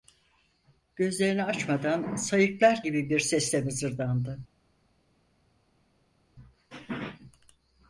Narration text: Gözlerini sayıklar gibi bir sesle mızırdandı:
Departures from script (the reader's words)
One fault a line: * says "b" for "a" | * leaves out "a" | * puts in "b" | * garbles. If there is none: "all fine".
* puts in "açmadan"